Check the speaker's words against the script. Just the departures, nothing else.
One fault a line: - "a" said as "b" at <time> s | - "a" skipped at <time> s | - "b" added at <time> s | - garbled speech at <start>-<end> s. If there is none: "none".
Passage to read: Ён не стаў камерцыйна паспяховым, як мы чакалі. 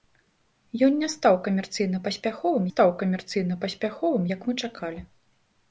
- "стаў камерцыйна паспяховым" added at 2.7 s